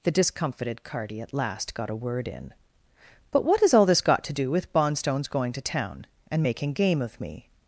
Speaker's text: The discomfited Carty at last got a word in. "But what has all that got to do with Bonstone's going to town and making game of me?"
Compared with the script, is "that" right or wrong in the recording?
wrong